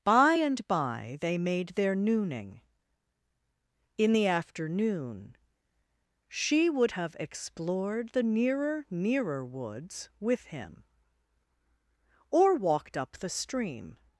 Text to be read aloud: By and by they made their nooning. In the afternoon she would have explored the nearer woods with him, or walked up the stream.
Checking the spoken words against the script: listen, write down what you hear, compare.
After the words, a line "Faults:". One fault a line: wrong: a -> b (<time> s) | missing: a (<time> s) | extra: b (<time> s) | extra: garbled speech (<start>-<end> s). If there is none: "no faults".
By and by they made their nooning. In the afternoon she would have explored the nearer nearer woods with him, or walked up the stream.
Faults:
extra: nearer (8.9 s)